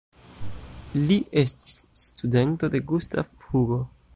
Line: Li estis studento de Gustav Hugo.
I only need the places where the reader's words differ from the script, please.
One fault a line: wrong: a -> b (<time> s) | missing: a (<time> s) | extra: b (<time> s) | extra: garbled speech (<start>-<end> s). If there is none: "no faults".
no faults